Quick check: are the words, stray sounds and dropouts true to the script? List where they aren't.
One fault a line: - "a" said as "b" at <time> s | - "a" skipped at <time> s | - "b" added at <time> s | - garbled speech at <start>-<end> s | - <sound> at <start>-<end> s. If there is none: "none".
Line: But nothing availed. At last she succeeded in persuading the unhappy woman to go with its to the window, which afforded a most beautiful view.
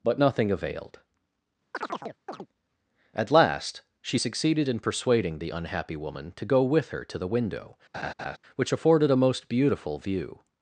- chirp at 1.7-2.5 s
- "its" said as "her" at 6.9 s
- laugh at 7.9-8.4 s